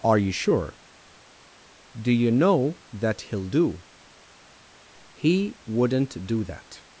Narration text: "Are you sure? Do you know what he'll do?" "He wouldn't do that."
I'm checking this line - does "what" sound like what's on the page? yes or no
no